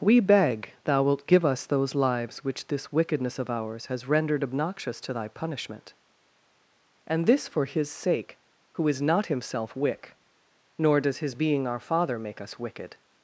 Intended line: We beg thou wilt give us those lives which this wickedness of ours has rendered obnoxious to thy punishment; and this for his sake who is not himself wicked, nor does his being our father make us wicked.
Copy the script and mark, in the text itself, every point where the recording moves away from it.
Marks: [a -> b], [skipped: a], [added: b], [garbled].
We beg thou wilt give us those lives which this wickedness of ours has rendered obnoxious to thy punishment; and this for his sake who is not himself [wicked, -> wick] nor does his being our father make us wicked.